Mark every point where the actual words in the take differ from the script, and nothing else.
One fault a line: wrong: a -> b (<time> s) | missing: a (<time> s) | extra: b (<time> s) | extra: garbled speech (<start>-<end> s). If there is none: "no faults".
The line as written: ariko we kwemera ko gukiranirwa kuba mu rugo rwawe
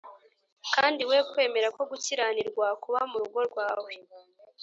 wrong: ariko -> kandi (0.7 s)